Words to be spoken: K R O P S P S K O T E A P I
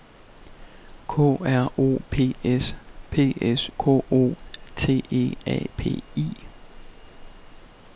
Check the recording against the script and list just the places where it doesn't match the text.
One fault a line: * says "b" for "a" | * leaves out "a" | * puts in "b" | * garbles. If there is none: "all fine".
all fine